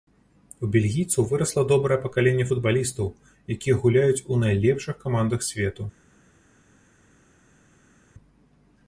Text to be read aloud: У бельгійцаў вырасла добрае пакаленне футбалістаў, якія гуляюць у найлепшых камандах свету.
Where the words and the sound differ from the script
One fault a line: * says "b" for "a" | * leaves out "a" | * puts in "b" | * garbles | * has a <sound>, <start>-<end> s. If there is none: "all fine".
all fine